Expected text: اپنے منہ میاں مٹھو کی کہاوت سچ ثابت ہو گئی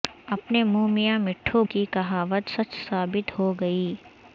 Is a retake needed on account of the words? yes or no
no